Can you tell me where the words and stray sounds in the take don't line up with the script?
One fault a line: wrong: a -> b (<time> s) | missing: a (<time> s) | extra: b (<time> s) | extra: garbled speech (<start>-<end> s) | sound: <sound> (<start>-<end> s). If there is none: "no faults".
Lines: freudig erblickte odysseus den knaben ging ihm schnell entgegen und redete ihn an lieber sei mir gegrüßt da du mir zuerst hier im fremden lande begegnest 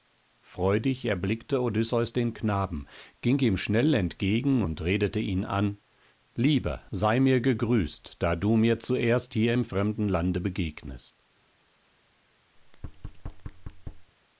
sound: thud (12.6-14.1 s)